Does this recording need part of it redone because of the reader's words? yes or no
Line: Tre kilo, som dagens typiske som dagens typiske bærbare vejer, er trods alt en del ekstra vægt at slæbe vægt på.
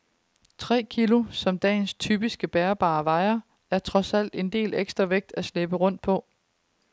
yes